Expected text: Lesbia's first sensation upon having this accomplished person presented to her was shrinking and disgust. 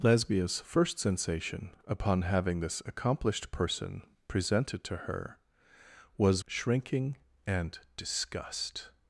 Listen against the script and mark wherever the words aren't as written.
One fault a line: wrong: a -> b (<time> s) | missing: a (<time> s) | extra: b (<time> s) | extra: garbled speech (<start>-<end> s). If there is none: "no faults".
no faults